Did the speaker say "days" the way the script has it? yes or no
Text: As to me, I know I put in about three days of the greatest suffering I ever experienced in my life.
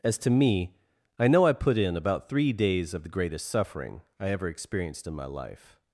yes